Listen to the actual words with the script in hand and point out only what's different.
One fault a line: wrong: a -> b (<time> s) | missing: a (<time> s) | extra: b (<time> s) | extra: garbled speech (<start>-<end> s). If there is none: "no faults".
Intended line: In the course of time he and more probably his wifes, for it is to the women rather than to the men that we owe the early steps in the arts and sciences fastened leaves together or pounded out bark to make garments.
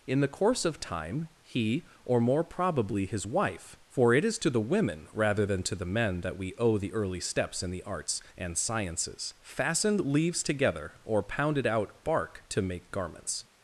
wrong: and -> or (2.0 s)
wrong: wifes -> wife (3.2 s)